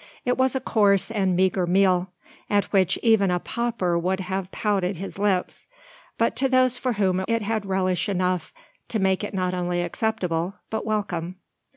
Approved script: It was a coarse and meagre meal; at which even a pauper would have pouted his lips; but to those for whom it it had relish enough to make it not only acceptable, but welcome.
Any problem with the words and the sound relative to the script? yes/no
no